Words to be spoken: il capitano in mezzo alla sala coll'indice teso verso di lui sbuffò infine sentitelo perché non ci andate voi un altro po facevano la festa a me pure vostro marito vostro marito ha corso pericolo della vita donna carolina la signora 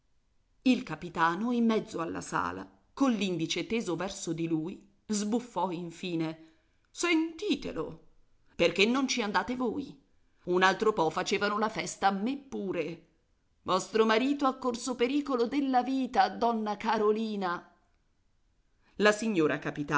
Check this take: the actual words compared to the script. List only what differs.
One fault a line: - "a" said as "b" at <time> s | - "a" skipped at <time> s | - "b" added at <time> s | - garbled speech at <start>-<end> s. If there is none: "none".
- "vostro marito" skipped at 14.4 s